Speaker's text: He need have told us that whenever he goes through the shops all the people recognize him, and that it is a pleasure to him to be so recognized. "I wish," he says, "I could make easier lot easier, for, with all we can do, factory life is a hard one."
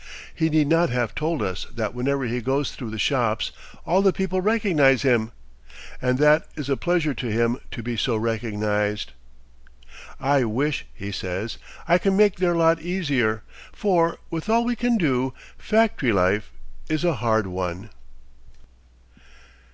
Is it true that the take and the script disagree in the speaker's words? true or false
true